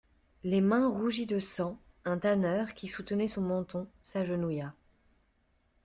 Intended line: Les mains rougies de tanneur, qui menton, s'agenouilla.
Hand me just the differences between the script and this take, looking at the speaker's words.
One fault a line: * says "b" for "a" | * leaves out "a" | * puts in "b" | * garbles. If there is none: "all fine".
* puts in "sang un"
* puts in "soutenait son"